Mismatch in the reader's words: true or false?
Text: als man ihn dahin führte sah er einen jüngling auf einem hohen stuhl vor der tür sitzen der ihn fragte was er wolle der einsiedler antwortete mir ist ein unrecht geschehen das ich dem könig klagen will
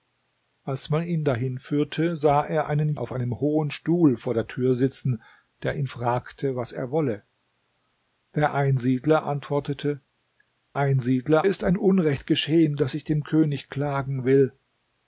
true